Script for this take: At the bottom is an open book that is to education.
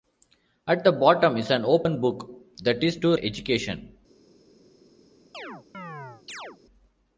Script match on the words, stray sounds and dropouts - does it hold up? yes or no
no